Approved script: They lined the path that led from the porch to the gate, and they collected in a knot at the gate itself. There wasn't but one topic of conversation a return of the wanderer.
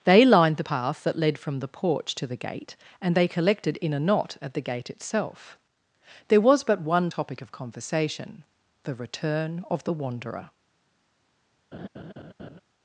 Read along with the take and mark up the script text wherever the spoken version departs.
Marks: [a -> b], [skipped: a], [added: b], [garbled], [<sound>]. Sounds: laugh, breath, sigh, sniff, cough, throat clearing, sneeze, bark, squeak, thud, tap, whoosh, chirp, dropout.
They lined the path that led from the porch to the gate, and they collected in a knot at the gate itself. There [wasn't -> was] but one topic of conversation [a -> the] return of the wanderer. [laugh]